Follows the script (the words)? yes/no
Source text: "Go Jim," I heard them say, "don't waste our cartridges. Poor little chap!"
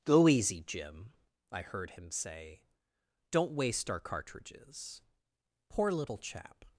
no